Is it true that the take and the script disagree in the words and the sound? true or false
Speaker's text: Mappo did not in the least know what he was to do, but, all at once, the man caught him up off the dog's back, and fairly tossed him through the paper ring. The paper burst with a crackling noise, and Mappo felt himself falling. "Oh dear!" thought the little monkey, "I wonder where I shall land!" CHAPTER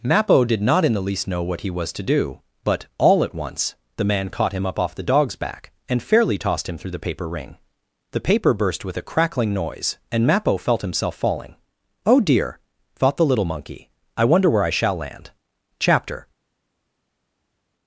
false